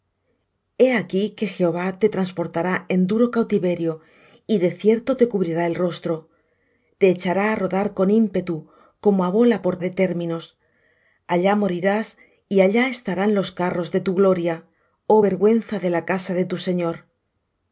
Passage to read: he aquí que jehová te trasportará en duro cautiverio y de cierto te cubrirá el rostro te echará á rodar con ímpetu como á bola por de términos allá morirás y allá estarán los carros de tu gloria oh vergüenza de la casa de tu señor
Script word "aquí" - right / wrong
right